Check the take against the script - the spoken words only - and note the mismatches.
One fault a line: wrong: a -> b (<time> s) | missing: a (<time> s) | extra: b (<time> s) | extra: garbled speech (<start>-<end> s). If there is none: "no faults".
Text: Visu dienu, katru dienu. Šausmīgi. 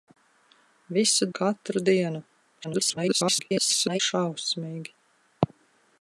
missing: dienu (1.3 s)
extra: garbled speech (2.6-4.0 s)